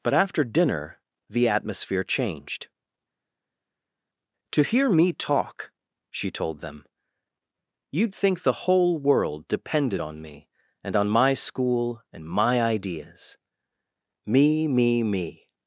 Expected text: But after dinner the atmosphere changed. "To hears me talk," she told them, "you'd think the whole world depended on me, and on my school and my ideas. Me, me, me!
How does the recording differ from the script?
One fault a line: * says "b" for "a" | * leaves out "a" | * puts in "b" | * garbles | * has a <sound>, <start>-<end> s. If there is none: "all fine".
* says "hear" for "hears"